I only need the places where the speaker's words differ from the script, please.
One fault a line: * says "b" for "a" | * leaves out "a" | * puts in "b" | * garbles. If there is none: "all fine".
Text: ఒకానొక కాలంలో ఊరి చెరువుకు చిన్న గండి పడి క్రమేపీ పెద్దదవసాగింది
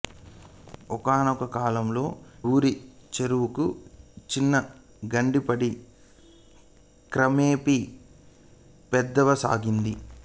all fine